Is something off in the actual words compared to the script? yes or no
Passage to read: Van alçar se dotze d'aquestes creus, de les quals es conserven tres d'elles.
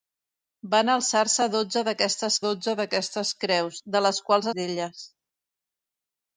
yes